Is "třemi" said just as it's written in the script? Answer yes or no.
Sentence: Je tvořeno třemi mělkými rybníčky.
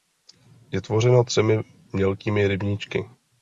yes